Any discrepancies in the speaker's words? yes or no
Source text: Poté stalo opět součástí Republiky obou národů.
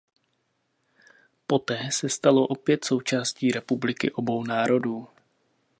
yes